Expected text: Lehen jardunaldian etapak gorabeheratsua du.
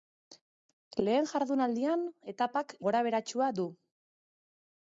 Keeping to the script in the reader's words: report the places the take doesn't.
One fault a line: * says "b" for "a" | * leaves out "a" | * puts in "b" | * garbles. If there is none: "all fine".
all fine